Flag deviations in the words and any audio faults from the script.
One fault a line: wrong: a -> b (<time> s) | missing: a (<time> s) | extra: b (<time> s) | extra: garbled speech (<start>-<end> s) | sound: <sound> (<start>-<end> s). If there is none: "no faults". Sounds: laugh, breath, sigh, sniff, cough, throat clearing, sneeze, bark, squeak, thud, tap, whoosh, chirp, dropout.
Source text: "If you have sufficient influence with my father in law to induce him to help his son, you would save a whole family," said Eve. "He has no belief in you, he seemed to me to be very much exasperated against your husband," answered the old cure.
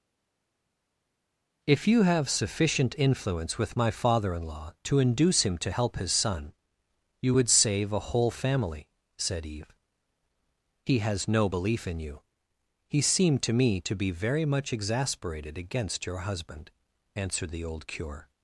no faults